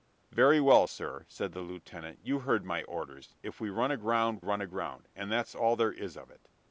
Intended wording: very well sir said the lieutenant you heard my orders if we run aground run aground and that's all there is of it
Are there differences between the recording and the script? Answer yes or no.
no